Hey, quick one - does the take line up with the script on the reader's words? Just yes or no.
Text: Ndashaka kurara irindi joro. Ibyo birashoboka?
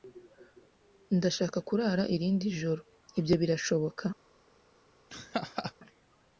yes